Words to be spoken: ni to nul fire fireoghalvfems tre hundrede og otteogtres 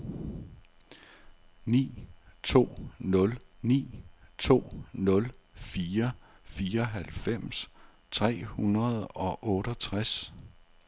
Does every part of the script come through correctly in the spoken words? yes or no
no